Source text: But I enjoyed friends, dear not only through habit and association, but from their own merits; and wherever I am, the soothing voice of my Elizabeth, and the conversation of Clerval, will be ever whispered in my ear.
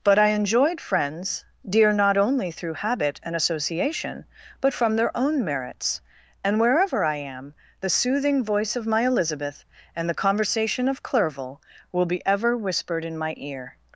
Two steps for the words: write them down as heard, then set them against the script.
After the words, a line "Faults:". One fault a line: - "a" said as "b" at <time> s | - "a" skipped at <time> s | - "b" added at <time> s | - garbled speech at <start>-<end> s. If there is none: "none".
But I enjoyed friends, dear not only through habit and association, but from their own merits; and wherever I am, the soothing voice of my Elizabeth, and the conversation of Clerval, will be ever whispered in my ear.
Faults:
none